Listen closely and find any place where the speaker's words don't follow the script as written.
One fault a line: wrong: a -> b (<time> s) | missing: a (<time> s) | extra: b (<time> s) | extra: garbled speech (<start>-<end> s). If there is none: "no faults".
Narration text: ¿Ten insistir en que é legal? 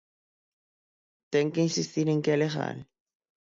extra: que (1.5 s)